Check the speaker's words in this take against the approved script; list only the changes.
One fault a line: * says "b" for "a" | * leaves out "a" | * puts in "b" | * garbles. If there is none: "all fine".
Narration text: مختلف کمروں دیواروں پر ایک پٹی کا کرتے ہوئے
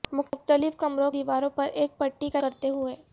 all fine